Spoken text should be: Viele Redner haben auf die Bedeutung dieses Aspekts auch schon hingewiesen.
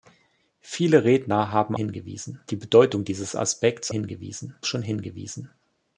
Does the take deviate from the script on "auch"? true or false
true